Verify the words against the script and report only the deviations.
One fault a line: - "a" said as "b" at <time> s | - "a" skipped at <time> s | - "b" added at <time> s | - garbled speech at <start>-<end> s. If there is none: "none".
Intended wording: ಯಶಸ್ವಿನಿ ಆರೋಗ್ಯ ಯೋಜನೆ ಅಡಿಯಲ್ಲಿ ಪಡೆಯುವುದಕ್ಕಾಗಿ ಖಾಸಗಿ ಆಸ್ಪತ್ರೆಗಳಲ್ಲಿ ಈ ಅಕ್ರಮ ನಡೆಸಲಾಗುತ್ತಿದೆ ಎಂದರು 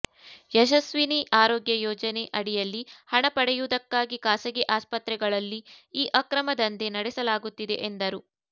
- "ಹಣ" added at 3.1 s
- "ದಂಧೆ" added at 6.6 s